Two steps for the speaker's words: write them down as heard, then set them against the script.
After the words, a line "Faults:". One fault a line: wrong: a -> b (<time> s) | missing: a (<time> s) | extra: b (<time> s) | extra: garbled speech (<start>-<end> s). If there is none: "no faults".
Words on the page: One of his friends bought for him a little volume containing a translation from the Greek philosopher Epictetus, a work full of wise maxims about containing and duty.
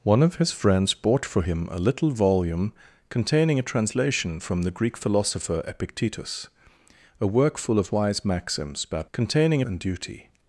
One of his friends bought for him a little volume containing a translation from the Greek philosopher Epictetus, a work full of wise maxims about containing and duty.
Faults:
no faults